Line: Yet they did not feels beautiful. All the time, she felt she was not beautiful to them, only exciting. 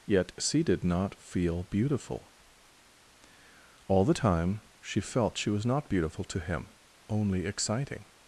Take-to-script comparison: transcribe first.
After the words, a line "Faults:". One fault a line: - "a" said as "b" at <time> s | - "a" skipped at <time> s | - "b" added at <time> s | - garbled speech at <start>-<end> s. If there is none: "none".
Yet she did not feel beautiful. All the time, she felt she was not beautiful to him, only exciting.
Faults:
- "they" said as "she" at 0.4 s
- "feels" said as "feel" at 1.1 s
- "them" said as "him" at 6.4 s